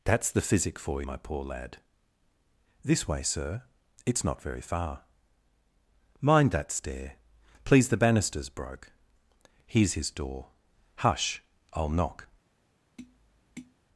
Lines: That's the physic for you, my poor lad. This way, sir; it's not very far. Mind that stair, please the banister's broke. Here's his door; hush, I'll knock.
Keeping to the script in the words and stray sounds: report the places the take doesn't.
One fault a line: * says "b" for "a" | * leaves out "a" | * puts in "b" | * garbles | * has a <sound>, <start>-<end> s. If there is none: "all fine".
* leaves out "you"
* has a tap, 13.0-13.8 s